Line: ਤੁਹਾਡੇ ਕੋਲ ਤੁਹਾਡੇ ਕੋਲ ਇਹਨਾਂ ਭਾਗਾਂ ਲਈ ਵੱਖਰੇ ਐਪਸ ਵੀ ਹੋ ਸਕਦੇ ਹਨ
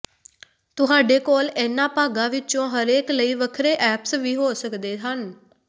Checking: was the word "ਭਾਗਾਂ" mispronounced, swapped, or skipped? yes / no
yes